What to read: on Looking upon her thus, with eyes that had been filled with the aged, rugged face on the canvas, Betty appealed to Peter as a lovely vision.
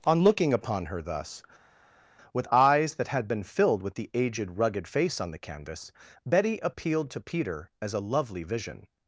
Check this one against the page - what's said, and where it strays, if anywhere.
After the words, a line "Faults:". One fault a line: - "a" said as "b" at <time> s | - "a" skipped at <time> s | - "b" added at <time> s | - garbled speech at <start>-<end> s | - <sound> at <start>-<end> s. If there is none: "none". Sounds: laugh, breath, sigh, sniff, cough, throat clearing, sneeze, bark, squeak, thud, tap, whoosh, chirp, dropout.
on Looking upon her thus, with eyes that had been filled with the aged, rugged face on the canvas, Betty appealed to Peter as a lovely vision.
Faults:
none